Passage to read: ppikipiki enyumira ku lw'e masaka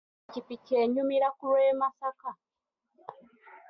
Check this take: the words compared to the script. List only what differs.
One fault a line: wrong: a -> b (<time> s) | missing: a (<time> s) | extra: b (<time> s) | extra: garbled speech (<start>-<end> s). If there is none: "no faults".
no faults